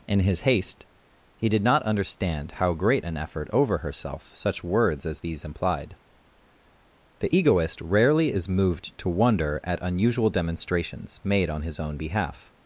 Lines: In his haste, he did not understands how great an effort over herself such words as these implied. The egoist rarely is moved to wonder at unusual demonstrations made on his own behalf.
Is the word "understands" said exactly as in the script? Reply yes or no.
no